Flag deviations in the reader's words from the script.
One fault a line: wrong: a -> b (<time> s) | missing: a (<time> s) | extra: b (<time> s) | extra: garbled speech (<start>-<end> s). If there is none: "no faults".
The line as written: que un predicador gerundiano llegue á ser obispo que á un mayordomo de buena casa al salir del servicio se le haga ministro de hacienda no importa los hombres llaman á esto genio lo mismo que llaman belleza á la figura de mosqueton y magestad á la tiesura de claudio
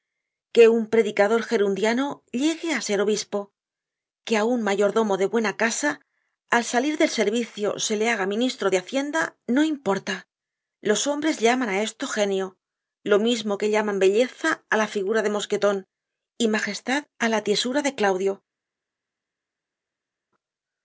no faults